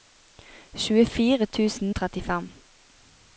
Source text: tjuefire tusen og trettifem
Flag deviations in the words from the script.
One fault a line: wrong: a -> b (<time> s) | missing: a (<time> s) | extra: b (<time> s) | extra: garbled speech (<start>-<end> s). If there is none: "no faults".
no faults